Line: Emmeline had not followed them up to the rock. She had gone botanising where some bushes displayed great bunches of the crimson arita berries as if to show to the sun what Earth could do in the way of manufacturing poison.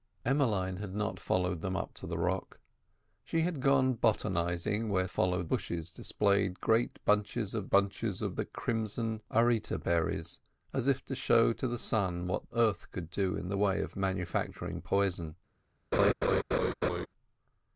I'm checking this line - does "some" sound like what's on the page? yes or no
no